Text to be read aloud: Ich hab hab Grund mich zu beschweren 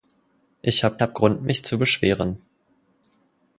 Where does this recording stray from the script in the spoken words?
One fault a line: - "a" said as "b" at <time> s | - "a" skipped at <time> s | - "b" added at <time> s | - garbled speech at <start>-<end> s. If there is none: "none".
none